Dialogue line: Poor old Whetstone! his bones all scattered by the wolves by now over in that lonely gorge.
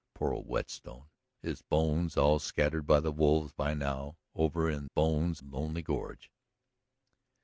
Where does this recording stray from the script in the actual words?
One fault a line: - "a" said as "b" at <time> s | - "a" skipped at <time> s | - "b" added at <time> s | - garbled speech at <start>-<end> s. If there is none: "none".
- "that" said as "bones" at 4.8 s